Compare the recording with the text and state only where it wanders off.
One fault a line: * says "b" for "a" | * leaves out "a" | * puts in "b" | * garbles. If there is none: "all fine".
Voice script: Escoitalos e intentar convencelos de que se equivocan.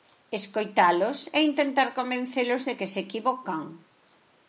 all fine